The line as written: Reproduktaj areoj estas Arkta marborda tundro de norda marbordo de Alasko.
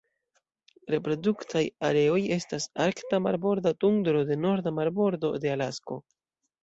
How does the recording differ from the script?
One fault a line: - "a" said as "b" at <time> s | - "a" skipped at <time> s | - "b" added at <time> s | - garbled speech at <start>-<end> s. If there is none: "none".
none